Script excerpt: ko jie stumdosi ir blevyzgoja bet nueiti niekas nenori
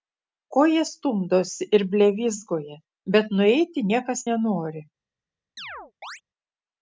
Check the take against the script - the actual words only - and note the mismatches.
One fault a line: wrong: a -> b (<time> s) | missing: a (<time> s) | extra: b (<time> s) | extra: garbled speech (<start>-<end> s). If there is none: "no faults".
no faults